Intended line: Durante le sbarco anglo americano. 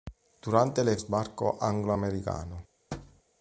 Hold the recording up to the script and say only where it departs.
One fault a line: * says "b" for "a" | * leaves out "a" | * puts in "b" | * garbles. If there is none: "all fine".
all fine